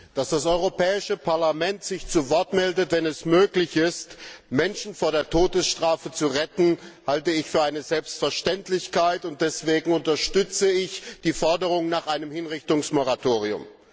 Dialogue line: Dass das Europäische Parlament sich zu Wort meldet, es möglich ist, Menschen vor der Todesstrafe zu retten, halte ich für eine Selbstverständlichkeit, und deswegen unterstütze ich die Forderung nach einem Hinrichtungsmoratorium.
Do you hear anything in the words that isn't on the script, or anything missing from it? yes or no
yes